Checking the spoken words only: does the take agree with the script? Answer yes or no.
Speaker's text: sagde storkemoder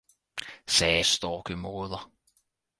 yes